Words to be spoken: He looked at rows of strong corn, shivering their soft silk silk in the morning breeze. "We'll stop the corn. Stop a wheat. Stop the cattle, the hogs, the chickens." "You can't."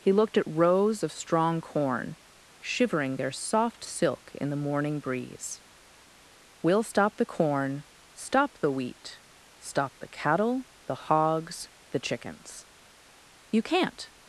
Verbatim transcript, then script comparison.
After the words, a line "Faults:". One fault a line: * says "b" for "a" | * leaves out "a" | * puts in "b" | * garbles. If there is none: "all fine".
He looked at rows of strong corn, shivering their soft silk in the morning breeze. "We'll stop the corn. Stop the wheat. Stop the cattle, the hogs, the chickens." "You can't."
Faults:
* leaves out "silk"
* says "the" for "a"